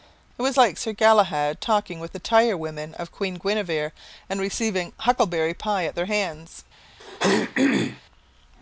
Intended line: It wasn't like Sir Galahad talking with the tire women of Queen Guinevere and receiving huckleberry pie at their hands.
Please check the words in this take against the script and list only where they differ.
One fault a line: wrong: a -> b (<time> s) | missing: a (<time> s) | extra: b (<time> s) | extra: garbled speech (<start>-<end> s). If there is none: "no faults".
wrong: wasn't -> was (0.4 s)